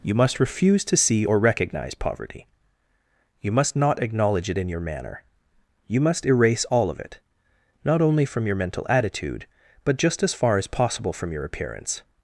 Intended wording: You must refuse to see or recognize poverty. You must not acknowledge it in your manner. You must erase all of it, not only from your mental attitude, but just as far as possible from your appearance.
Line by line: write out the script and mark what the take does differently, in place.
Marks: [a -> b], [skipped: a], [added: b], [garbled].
You must refuse to see or recognize poverty. You must not acknowledge it in your manner. You must erase all of it, not only from your mental attitude, but just as far as possible from your appearance.